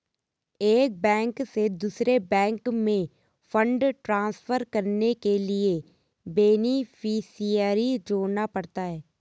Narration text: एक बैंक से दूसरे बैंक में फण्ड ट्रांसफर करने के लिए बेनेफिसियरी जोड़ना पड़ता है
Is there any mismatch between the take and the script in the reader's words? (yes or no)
no